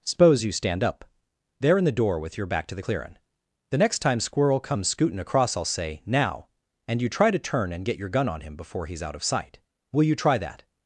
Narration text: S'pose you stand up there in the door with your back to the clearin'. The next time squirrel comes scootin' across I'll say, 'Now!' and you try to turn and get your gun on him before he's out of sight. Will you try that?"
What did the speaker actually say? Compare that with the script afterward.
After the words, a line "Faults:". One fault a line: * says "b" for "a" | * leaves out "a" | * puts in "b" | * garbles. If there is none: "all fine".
S'pose you stand up there in the door with your back to the clearin'. The next time squirrel comes scootin' across I'll say, 'Now!' and you try to turn and get your gun on him before he's out of sight. Will you try that?"
Faults:
all fine